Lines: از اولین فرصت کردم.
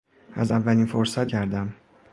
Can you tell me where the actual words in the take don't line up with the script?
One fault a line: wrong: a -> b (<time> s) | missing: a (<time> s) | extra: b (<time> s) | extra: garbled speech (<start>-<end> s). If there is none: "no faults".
no faults